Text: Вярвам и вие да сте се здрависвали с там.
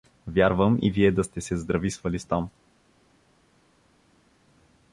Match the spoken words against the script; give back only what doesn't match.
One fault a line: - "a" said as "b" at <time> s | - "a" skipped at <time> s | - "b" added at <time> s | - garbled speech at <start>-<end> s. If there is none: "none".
none